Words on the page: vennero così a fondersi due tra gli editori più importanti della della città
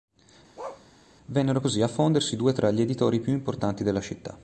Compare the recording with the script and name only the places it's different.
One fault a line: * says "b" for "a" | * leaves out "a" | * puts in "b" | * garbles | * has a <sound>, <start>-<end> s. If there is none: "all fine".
* has a bark, 0.6-0.9 s
* leaves out "della"